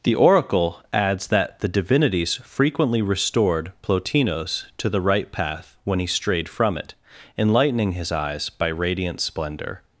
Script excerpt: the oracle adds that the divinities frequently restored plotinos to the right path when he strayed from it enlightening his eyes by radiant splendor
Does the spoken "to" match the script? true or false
true